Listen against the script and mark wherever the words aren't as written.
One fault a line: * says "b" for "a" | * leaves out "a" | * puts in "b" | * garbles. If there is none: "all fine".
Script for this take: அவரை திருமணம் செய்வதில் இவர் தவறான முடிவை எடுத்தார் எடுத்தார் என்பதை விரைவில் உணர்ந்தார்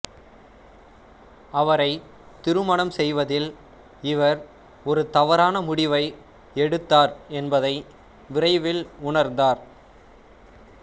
* puts in "ஒரு"
* leaves out "எடுத்தார்"